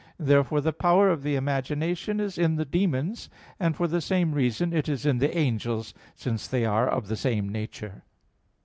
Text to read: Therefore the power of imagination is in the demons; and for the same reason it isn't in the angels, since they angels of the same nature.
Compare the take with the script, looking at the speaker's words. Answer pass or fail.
fail